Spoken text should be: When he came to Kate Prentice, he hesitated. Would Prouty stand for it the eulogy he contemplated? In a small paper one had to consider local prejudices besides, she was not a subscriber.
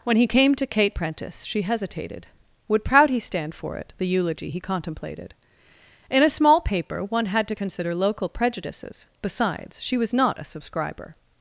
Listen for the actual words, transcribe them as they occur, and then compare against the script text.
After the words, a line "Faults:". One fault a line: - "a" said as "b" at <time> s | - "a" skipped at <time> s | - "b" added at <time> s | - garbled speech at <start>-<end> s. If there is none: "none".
When he came to Kate Prentice, she hesitated. Would Prouty stand for it the eulogy he contemplated? In a small paper one had to consider local prejudices besides, she was not a subscriber.
Faults:
- "he" said as "she" at 1.4 s